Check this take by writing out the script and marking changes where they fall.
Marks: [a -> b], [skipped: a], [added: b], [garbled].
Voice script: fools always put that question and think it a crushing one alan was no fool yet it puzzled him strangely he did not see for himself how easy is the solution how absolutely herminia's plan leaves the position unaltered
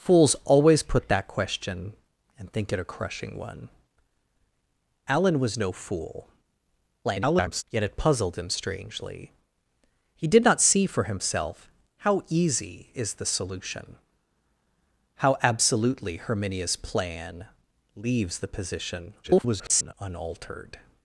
fools always put that question and think it a crushing one alan was no fool [garbled] yet it puzzled him strangely he did not see for himself how easy is the solution how absolutely herminia's plan leaves the position [garbled] unaltered